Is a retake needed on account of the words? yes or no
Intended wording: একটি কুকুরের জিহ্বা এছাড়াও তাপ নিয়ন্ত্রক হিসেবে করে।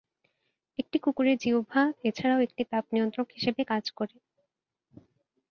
yes